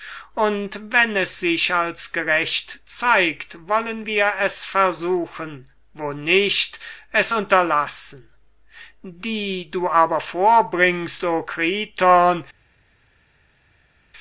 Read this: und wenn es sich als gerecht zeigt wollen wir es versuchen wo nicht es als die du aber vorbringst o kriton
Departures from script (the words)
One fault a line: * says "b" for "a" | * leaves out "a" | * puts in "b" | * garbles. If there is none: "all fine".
* says "unterlassen" for "als"